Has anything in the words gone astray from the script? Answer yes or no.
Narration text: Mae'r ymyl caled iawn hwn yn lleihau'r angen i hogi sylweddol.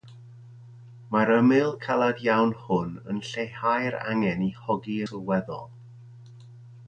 no